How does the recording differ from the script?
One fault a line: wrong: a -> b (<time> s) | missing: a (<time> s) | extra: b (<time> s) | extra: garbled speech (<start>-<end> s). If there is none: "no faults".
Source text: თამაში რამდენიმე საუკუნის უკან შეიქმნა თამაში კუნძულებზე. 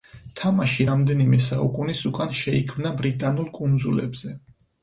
wrong: თამაში -> ბრიტანულ (3.0 s)